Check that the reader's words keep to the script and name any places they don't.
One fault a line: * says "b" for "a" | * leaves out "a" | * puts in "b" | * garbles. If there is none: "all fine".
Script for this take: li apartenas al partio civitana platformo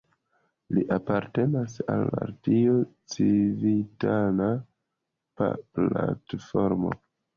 all fine